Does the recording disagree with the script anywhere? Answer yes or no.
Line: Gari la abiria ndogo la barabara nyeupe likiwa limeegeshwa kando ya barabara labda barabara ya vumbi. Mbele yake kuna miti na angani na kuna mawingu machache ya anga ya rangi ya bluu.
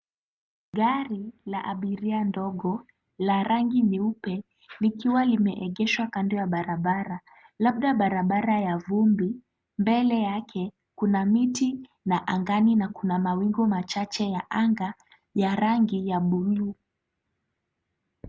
yes